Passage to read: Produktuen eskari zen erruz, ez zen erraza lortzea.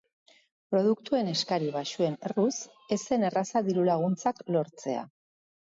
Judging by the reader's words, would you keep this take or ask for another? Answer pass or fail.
fail